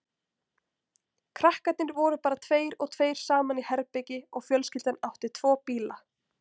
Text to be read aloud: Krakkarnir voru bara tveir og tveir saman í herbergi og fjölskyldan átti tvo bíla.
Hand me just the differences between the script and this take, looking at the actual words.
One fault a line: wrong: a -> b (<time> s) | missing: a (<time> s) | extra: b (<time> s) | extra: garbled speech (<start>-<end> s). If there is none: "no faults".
no faults